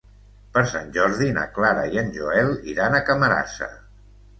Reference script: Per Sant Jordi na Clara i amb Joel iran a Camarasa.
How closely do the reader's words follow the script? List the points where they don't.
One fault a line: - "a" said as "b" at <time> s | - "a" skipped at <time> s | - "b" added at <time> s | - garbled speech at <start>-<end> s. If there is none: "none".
- "amb" said as "en" at 2.1 s